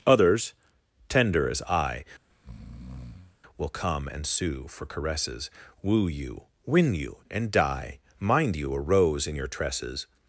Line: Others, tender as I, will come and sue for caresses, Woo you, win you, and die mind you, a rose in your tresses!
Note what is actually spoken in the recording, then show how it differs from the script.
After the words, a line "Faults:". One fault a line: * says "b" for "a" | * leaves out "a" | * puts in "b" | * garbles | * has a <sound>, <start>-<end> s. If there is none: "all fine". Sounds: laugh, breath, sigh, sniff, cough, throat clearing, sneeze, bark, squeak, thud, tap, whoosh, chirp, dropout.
Others, tender as I, will come and sue for caresses, Woo you, win you, and die mind you, a rose in your tresses!
Faults:
* has a breath, 2.3-3.4 s